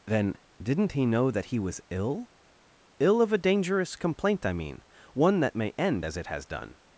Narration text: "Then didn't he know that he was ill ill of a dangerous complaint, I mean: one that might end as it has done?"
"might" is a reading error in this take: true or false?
true